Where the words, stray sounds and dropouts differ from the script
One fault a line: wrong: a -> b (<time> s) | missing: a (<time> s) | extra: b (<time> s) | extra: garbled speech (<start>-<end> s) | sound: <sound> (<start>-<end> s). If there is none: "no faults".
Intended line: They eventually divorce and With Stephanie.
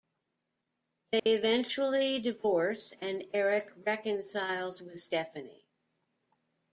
sound: dropout (1.2-1.3 s)
extra: Eric reconciles (3.3 s)